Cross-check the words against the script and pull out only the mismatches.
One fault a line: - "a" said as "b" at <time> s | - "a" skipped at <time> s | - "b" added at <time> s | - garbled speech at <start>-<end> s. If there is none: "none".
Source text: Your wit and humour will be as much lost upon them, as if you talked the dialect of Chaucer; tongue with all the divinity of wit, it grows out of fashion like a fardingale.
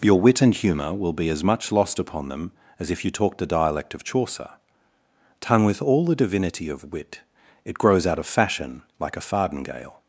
none